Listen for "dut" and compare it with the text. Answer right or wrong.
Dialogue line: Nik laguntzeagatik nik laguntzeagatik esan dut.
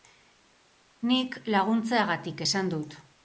right